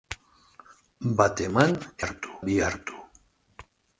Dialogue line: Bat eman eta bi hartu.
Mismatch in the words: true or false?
true